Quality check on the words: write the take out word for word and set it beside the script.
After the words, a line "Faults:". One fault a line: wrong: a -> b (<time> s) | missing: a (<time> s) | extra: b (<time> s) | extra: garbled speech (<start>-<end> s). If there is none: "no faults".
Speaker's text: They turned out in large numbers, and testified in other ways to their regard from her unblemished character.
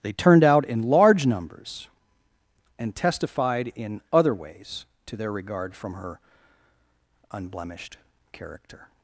They turned out in large numbers, and testified in other ways to their regard from her unblemished character.
Faults:
no faults